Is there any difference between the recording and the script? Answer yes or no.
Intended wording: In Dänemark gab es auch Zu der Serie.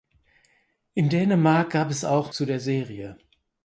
no